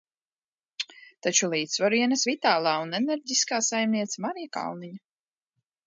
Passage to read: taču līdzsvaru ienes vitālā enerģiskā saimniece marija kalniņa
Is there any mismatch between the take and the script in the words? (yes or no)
yes